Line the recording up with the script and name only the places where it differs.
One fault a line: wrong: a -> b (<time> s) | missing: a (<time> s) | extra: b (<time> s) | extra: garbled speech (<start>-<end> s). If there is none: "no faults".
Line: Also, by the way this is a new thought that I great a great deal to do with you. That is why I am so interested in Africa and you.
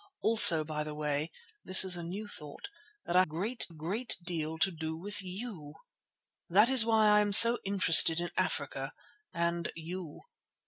no faults